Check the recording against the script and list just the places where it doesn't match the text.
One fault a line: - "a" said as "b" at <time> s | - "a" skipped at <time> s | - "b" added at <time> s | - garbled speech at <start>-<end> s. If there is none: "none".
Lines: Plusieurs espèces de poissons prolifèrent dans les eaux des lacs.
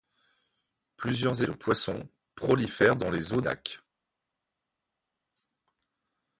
- "espèces" skipped at 1.4 s
- "des" skipped at 3.4 s